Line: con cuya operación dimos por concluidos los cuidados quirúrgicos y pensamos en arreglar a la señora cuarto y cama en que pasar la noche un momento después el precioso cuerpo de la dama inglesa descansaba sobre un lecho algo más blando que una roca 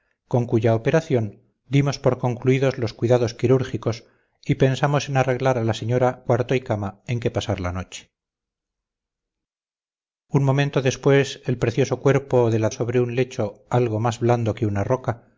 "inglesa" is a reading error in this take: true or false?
true